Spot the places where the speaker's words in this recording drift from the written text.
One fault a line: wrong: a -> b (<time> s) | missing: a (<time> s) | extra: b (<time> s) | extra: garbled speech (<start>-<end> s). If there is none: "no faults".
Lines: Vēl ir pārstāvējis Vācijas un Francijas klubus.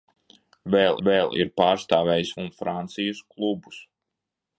extra: vēl (1.1 s)
missing: Vācijas (2.3 s)